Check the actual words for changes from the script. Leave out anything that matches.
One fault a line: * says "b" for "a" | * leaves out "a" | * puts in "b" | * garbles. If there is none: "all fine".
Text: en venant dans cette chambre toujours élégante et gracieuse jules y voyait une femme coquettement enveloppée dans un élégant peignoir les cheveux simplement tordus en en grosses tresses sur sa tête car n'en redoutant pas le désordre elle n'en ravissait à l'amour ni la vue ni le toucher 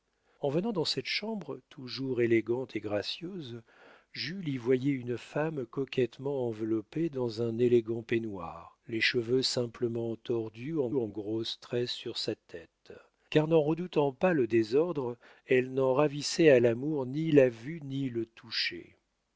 all fine